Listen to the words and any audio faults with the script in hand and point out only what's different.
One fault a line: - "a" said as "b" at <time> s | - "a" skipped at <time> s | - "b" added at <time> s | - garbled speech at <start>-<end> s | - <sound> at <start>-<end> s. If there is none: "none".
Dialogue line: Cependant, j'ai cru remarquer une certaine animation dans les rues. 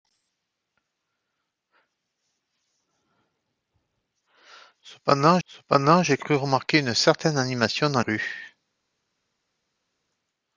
- "cependant" added at 5.4 s
- "les" skipped at 8.0 s